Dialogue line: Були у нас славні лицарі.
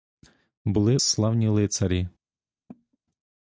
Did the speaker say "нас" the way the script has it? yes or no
no